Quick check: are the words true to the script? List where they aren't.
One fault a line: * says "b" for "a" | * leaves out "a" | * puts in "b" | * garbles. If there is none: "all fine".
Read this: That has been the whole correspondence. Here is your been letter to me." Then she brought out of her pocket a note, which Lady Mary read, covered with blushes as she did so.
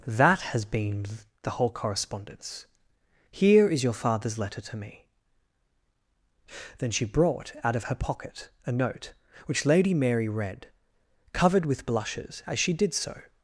* says "father's" for "been"